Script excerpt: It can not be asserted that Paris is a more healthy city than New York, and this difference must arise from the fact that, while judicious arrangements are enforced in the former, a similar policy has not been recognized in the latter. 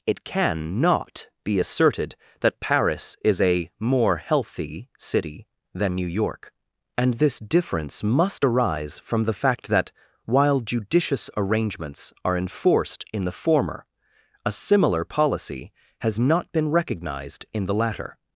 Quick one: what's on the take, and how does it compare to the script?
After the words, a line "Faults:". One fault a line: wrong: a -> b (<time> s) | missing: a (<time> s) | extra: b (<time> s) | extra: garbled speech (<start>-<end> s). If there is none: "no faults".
It can not be asserted that Paris is a more healthy city than New York, and this difference must arise from the fact that, while judicious arrangements are enforced in the former, a similar policy has not been recognized in the latter.
Faults:
no faults